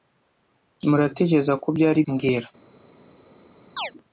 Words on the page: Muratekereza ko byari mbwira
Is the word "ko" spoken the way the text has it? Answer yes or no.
yes